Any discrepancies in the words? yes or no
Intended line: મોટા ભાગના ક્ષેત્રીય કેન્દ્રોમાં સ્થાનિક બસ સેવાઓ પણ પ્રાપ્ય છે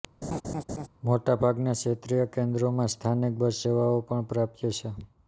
no